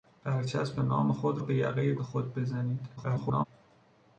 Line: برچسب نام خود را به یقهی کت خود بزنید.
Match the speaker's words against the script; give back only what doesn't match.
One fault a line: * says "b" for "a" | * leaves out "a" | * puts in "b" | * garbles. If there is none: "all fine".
* leaves out "را"
* leaves out "کت"
* garbles